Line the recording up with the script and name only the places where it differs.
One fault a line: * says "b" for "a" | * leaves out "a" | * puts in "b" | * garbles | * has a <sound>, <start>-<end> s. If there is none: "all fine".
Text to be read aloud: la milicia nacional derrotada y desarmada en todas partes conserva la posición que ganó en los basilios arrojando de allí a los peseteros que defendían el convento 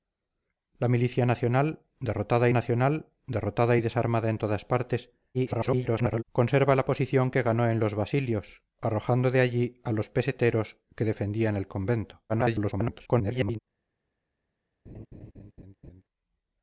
* puts in "nacional derrotada"
* garbles
* garbles
* has a laugh, 14.9-16.0 s